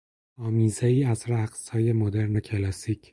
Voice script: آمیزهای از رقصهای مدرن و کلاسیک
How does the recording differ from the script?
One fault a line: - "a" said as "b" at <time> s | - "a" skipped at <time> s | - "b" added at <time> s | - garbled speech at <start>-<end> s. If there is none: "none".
none